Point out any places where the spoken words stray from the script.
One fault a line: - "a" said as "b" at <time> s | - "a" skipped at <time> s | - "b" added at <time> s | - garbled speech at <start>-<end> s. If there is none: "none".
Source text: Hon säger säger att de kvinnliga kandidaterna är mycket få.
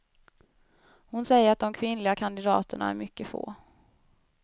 - "säger" skipped at 1.5 s